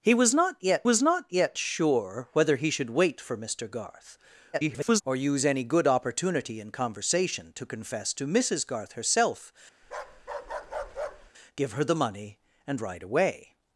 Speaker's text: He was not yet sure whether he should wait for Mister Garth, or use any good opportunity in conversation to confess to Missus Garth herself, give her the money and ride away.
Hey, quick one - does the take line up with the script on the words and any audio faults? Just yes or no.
no